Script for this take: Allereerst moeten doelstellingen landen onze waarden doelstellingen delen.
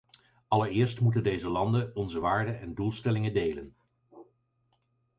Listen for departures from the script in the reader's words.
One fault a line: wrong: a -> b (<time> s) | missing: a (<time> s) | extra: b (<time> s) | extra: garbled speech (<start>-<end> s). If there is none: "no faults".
wrong: doelstellingen -> deze (1.2 s)
extra: en (2.6 s)